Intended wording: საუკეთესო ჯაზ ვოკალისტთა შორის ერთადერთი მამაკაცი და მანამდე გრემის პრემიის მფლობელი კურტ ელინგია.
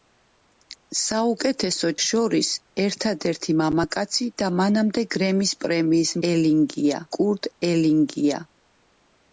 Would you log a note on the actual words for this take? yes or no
yes